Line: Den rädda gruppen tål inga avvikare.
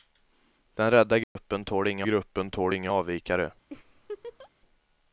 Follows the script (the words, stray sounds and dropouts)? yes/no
no